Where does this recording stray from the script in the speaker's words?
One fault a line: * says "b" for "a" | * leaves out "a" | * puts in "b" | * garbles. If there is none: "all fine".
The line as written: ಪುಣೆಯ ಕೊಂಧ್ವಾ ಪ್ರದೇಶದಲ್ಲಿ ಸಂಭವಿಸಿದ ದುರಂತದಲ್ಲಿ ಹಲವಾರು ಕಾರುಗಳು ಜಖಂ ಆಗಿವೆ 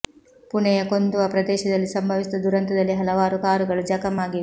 all fine